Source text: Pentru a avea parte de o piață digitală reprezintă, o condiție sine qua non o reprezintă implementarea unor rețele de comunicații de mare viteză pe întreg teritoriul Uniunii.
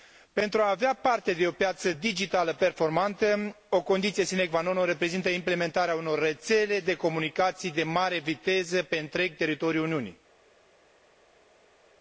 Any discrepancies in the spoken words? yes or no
yes